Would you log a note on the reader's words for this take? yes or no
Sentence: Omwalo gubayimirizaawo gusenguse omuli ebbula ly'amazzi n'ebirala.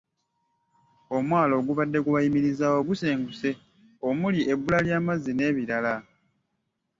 yes